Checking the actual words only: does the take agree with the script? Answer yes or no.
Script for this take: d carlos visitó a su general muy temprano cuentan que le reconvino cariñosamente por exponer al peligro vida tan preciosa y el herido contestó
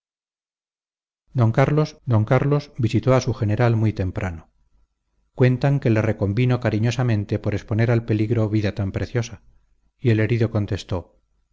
no